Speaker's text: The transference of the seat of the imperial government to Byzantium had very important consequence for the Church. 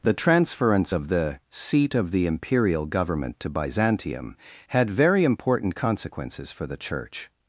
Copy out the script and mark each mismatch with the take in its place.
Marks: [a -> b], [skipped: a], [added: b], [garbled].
The transference of the seat of the imperial government to Byzantium had very important [consequence -> consequences] for the Church.